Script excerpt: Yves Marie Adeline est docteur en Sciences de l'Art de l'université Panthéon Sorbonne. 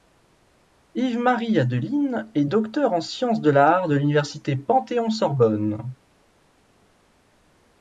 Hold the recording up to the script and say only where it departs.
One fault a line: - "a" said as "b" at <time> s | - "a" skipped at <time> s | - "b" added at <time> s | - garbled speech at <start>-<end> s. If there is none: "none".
none